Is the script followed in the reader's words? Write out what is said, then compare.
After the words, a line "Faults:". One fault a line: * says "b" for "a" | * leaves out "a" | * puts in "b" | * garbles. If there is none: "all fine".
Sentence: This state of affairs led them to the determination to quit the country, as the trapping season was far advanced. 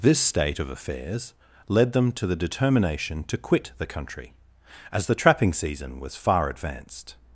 This state of affairs led them to the determination to quit the country, as the trapping season was far advanced.
Faults:
all fine